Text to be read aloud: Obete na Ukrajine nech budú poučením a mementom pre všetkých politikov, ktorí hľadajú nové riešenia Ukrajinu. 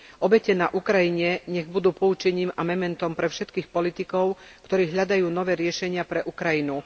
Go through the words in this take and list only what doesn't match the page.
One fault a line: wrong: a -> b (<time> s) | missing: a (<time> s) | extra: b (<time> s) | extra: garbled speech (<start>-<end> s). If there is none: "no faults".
extra: pre (6.1 s)